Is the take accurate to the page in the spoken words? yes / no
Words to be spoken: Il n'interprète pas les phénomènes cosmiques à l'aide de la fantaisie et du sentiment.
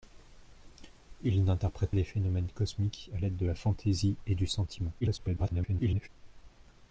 no